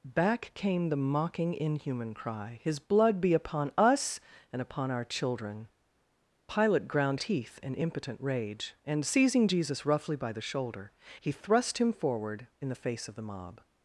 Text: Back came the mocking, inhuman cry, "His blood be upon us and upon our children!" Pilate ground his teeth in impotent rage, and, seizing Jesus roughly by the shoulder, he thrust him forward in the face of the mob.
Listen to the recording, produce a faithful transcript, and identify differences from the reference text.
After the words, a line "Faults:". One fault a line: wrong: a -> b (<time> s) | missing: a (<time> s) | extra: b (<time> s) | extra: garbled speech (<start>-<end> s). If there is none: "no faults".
Back came the mocking, inhuman cry, "His blood be upon us and upon our children!" Pilate ground teeth in impotent rage, and, seizing Jesus roughly by the shoulder, he thrust him forward in the face of the mob.
Faults:
missing: his (7.2 s)